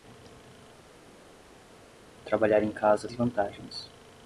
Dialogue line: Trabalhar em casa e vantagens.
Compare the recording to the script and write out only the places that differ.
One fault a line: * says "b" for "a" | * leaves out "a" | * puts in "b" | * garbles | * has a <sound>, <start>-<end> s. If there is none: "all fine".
all fine